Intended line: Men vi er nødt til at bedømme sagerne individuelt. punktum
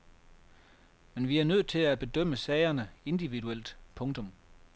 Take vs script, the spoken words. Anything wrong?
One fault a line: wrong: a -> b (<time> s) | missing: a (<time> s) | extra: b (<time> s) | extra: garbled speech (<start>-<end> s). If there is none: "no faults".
no faults